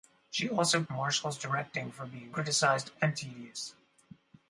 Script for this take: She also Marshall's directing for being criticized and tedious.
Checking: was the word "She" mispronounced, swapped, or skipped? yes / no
no